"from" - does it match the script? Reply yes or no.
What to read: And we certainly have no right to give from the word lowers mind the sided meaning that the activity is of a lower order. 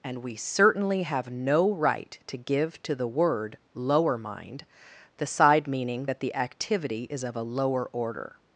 no